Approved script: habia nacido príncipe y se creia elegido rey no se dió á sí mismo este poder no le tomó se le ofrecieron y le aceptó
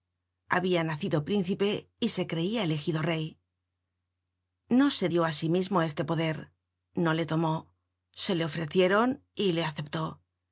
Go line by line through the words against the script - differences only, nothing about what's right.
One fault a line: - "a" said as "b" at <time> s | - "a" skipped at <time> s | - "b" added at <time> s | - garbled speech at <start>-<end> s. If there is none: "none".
none